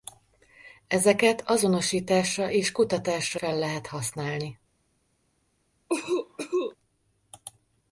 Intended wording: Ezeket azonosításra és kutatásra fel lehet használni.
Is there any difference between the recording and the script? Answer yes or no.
no